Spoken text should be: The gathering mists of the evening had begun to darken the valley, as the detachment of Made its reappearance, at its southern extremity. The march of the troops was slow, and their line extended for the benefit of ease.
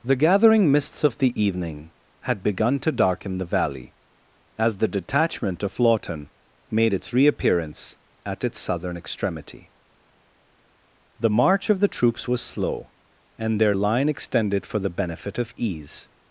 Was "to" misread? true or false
false